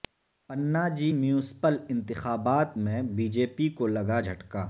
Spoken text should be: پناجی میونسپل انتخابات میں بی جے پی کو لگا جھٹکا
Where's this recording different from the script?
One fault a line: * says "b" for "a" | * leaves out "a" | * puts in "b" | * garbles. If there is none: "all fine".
all fine